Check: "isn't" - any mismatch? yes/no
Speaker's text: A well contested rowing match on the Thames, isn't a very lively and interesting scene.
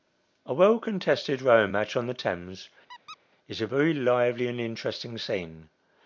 yes